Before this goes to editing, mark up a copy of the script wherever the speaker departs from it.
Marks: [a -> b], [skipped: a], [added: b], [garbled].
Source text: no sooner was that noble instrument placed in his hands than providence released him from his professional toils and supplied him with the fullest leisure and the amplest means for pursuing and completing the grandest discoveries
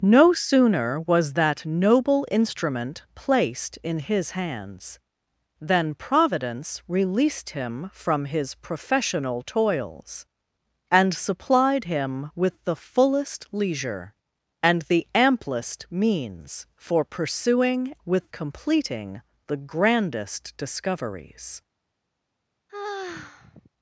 no sooner was that noble instrument placed in his hands than providence released him from his professional toils and supplied him with the fullest leisure and the amplest means for pursuing [and -> with] completing the grandest discoveries